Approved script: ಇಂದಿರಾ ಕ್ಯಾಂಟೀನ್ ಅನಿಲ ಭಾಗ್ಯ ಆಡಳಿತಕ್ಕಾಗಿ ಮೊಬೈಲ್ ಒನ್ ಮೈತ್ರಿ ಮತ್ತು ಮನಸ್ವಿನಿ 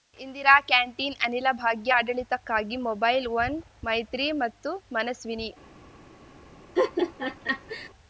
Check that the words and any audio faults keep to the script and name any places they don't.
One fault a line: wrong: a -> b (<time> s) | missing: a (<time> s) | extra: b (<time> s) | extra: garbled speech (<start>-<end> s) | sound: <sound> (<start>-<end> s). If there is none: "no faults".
sound: laugh (6.8-7.9 s)